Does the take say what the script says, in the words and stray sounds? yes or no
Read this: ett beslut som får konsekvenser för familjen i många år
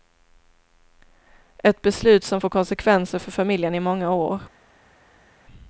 yes